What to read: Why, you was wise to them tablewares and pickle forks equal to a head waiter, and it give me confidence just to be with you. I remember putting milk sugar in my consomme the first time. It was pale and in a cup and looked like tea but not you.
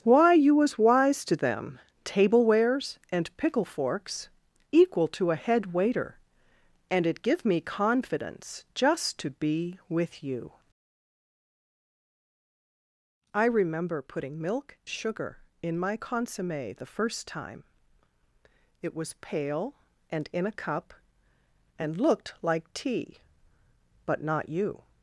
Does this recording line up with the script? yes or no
yes